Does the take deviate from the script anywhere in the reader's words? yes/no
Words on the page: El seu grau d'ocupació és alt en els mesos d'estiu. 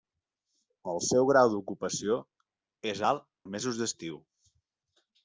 yes